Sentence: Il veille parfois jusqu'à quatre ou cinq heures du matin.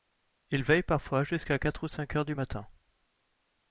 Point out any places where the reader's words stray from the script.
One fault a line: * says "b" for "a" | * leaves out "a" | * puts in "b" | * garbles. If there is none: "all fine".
all fine